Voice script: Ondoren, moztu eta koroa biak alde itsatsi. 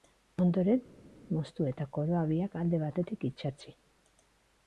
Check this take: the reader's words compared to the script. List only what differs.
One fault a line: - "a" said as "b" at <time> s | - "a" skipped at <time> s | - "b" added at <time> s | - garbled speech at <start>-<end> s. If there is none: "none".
- "batetik" added at 2.8 s